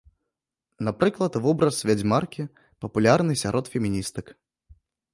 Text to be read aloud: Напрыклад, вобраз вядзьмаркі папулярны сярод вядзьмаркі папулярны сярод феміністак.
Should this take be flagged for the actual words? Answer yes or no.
yes